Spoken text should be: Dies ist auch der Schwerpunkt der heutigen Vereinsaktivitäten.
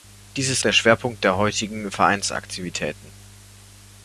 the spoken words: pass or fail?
fail